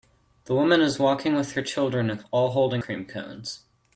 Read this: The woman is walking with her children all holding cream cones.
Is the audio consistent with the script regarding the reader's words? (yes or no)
yes